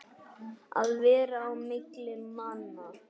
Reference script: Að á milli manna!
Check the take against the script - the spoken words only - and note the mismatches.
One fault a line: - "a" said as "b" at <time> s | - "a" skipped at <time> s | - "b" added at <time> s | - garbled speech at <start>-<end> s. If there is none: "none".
- "vera" added at 1.0 s